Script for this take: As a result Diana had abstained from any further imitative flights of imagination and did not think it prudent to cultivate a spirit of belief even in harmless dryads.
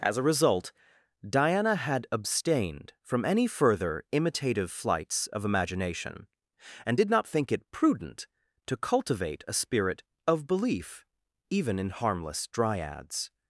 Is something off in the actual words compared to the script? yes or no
no